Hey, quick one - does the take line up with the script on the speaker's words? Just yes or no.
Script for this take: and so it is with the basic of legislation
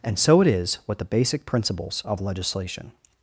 no